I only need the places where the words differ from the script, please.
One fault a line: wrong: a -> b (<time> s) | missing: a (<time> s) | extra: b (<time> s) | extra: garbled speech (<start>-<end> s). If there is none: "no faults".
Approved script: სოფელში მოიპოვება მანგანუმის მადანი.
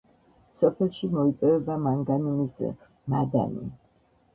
no faults